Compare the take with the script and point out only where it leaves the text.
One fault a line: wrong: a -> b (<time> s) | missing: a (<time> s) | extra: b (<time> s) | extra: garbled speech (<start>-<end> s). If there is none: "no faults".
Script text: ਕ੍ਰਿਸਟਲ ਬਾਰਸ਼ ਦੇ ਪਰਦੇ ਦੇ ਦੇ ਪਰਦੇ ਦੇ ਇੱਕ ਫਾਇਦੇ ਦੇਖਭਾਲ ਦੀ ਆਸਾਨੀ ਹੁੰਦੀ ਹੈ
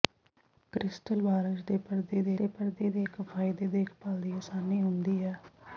no faults